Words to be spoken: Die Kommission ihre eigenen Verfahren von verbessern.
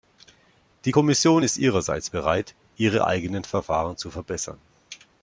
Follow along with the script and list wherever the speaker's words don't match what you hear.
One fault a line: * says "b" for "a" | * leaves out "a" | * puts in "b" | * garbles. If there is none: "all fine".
* puts in "ist ihrerseits bereit"
* says "zu" for "von"